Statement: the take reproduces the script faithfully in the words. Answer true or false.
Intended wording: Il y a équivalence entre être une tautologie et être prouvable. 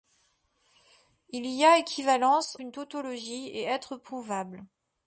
false